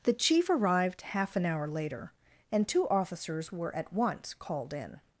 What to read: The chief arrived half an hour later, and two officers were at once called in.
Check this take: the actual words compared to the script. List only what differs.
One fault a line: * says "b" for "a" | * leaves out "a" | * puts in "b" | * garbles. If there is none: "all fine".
all fine